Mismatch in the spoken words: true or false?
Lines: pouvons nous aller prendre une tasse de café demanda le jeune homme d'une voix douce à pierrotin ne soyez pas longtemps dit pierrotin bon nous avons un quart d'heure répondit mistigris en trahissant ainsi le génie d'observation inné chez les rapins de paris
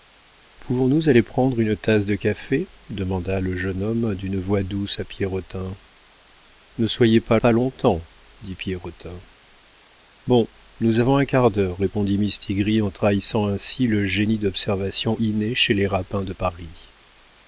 true